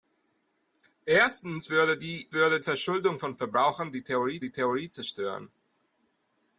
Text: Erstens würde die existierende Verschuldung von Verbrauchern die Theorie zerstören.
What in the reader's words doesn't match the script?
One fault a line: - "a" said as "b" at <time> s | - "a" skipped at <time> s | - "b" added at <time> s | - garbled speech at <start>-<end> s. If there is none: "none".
- "existierende" said as "würde" at 2.3 s
- "die Theorie" added at 4.4 s